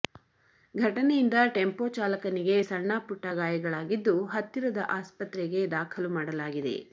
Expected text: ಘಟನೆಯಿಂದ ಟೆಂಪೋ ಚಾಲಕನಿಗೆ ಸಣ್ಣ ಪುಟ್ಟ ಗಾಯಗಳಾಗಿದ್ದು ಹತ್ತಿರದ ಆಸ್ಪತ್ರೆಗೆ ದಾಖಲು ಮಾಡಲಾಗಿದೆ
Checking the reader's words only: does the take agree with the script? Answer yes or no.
yes